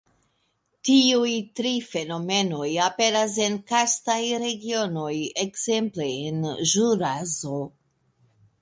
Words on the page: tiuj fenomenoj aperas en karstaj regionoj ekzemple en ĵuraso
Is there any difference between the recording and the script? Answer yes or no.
yes